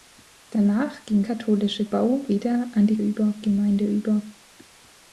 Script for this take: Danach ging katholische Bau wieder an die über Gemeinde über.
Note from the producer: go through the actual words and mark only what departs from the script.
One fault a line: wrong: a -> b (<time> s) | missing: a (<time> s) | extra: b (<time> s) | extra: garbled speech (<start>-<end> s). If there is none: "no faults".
no faults